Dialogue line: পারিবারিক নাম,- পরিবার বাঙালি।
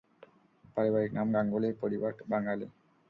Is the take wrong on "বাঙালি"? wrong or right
right